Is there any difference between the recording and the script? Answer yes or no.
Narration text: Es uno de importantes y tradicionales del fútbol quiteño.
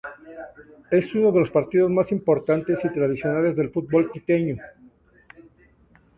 yes